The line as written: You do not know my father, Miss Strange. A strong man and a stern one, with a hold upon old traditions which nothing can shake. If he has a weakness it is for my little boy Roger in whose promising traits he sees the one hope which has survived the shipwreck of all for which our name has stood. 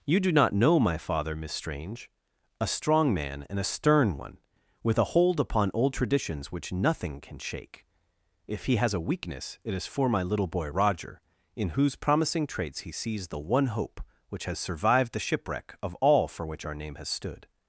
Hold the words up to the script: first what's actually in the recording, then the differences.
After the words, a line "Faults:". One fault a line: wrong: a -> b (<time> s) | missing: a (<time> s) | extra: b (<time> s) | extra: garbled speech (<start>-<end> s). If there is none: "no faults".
You do not know my father, Miss Strange. A strong man and a stern one, with a hold upon old traditions which nothing can shake. If he has a weakness it is for my little boy Roger in whose promising traits he sees the one hope which has survived the shipwreck of all for which our name has stood.
Faults:
no faults